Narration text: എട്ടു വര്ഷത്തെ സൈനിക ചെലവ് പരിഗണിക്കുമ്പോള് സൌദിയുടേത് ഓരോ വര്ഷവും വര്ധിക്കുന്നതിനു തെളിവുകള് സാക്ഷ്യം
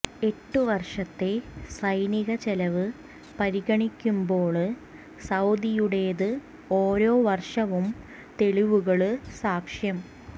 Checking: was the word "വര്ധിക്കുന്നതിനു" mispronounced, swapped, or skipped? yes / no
yes